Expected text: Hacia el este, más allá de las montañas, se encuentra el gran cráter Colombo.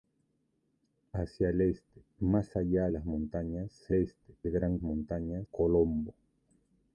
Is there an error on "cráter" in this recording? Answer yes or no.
yes